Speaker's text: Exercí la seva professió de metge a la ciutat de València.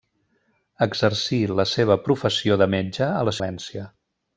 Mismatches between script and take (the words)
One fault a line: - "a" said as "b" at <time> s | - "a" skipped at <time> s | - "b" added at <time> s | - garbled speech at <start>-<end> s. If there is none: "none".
- "ciutat de" skipped at 3.4 s